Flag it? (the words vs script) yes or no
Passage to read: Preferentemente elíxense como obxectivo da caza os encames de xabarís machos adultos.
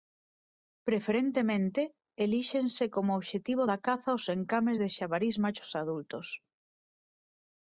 no